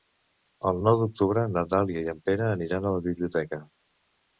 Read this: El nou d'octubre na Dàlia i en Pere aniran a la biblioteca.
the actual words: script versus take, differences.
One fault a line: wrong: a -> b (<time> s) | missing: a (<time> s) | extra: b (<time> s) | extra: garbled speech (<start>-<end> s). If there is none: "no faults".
no faults